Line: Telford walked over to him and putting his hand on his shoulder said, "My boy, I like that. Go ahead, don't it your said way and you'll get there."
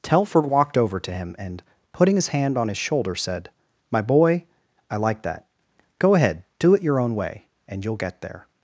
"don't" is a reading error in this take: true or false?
true